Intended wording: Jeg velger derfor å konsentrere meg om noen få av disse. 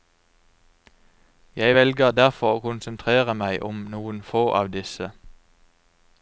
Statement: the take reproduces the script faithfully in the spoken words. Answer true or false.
true